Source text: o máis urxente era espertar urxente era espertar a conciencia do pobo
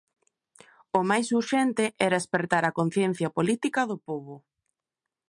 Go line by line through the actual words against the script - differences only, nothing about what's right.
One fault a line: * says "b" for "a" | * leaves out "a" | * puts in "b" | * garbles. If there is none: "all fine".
* leaves out "urxente era espertar"
* puts in "política"